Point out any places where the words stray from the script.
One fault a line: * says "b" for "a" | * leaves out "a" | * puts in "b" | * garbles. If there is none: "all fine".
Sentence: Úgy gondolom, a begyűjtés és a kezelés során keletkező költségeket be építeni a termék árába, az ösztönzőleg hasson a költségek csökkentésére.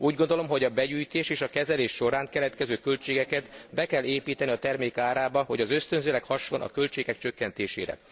* puts in "hogy"
* puts in "kell"
* puts in "hogy"